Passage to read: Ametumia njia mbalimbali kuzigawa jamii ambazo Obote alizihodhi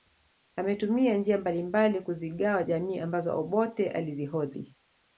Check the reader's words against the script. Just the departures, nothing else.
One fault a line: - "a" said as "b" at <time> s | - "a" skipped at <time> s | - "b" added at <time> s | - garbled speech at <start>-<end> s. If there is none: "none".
none